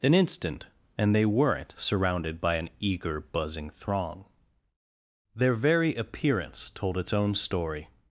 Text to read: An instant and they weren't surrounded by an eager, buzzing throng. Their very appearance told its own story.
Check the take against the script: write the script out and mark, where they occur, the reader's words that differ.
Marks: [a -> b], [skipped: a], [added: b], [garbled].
An instant and they weren't surrounded by an eager, buzzing throng. Their very appearance told its own story.